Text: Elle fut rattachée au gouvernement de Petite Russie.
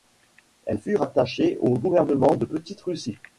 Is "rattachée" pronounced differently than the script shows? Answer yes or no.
no